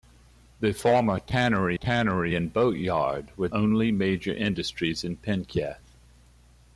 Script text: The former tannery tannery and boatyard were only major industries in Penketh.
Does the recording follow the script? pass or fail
pass